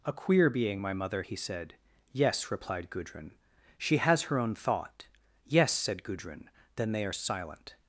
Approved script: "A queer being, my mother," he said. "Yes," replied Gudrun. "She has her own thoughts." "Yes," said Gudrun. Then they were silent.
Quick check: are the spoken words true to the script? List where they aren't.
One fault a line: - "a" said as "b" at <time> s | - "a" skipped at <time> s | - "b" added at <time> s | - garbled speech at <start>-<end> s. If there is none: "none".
- "thoughts" said as "thought" at 4.5 s
- "were" said as "are" at 7.0 s